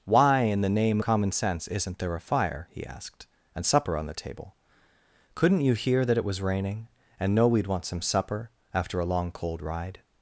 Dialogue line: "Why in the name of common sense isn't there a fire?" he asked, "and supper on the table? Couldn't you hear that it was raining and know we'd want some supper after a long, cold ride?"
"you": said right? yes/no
yes